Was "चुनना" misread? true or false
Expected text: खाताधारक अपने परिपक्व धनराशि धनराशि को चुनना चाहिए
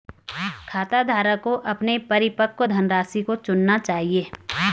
false